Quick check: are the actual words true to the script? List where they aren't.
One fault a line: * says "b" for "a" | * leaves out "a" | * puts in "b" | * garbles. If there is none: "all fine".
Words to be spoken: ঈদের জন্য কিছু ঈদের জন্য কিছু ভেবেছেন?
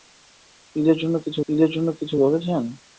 all fine